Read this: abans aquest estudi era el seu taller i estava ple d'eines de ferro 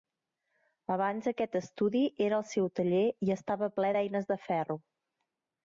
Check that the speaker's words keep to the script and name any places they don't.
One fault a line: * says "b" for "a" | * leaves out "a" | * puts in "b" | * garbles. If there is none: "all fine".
all fine